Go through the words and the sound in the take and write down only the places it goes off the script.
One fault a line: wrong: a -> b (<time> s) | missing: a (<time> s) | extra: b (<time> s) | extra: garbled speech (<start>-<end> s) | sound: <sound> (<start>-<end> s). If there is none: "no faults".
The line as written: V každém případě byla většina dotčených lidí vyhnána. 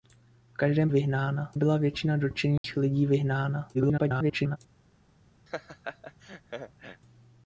wrong: případě -> vyhnána (0.9 s)
sound: dropout (2.6-2.6 s)
extra: garbled speech (3.7-4.6 s)
sound: laugh (5.5-7.0 s)